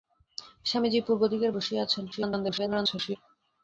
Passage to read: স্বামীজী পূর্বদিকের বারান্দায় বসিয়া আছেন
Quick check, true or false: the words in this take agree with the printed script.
false